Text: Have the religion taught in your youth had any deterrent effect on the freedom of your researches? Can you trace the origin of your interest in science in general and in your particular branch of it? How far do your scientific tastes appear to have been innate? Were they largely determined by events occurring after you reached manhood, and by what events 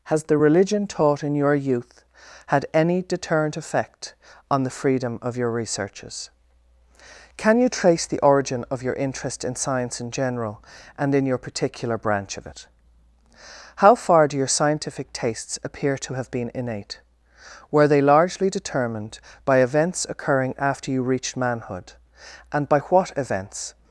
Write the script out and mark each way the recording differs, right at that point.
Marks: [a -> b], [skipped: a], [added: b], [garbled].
[Have -> Has] the religion taught in your youth had any deterrent effect on the freedom of your researches? Can you trace the origin of your interest in science in general and in your particular branch of it? How far do your scientific tastes appear to have been innate? Were they largely determined by events occurring after you reached manhood, and by what events